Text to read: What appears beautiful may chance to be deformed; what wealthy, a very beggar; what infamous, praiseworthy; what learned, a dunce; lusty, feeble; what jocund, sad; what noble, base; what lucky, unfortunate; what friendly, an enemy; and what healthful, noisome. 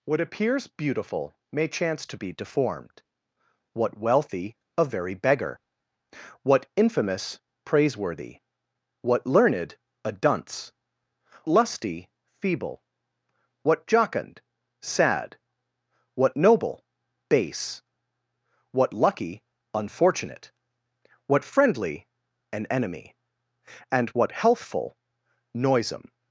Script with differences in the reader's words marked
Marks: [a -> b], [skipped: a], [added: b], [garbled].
What appears beautiful may chance to be deformed; what wealthy, a very beggar; what infamous, praiseworthy; what learned, a dunce; lusty, feeble; what jocund, sad; what noble, base; what lucky, unfortunate; what friendly, an enemy; and what healthful, noisome.